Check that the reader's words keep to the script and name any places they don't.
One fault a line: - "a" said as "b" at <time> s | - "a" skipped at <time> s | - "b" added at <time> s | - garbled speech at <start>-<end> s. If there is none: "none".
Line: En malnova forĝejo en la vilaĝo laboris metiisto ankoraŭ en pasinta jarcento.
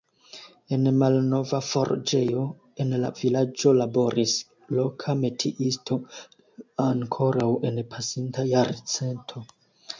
- "loka" added at 4.8 s